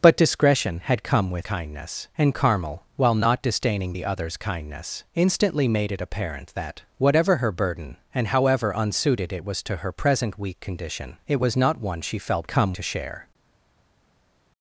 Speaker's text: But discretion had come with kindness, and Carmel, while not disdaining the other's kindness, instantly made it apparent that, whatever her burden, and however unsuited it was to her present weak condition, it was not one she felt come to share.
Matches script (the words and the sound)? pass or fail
pass